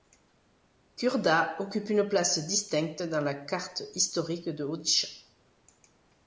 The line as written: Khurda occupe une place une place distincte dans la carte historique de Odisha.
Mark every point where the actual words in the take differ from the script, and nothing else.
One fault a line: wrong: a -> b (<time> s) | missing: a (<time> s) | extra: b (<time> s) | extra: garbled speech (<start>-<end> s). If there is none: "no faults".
missing: une place (2.5 s)